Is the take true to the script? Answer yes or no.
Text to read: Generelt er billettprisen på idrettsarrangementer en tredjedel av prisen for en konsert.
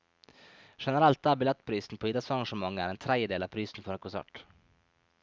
yes